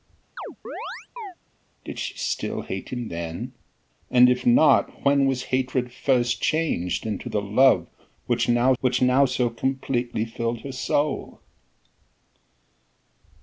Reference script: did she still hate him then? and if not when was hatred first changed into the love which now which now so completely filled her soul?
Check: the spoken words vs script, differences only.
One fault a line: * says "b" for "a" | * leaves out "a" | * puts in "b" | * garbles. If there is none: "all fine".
all fine